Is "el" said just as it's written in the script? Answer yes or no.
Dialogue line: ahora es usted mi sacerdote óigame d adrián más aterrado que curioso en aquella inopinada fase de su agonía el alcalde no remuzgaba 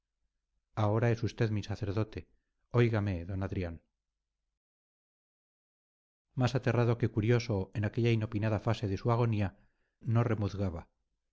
no